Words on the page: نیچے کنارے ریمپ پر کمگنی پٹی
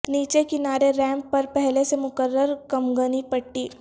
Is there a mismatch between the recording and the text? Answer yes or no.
yes